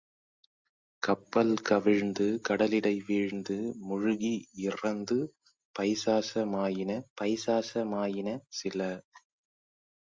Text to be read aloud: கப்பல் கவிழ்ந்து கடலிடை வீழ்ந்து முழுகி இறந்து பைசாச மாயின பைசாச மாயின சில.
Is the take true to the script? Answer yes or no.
yes